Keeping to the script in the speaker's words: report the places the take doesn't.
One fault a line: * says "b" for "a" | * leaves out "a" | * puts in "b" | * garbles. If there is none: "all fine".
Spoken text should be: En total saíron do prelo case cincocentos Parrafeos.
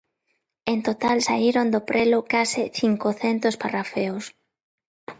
all fine